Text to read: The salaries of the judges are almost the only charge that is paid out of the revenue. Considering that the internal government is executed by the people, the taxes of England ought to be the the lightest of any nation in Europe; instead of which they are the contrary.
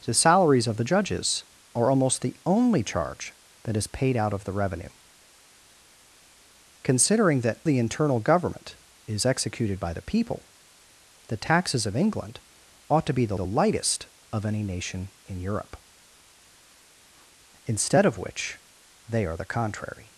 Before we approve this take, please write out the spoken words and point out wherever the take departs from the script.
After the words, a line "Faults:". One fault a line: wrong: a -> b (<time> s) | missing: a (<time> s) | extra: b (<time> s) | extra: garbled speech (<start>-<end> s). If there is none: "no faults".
The salaries of the judges are almost the only charge that is paid out of the revenue. Considering that the internal government is executed by the people, the taxes of England ought to be the the lightest of any nation in Europe; instead of which they are the contrary.
Faults:
no faults